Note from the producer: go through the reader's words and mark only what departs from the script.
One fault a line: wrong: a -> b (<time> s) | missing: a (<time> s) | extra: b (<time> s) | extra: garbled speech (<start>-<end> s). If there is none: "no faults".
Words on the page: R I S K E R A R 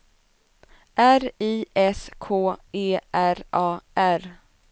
no faults